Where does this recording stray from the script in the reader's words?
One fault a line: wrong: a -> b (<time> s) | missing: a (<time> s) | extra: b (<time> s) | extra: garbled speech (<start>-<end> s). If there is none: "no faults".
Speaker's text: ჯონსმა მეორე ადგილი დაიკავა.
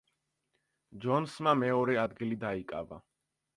no faults